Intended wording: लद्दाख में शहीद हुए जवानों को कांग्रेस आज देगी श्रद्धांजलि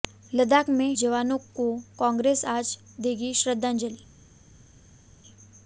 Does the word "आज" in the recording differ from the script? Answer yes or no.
no